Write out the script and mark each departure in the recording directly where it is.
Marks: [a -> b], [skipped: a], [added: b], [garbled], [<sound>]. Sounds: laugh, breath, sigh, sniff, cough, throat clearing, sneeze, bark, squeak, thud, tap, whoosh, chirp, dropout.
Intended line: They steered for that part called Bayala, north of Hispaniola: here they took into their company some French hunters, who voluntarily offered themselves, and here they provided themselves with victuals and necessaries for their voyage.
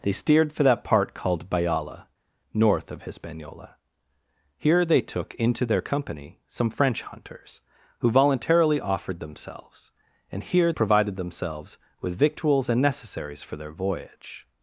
They steered for that part called Bayala, north of Hispaniola: here they took into their company some French hunters, who voluntarily offered themselves, and here [skipped: they] provided themselves with victuals and necessaries for their voyage.